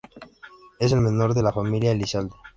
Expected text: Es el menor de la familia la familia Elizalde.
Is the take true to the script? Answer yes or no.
no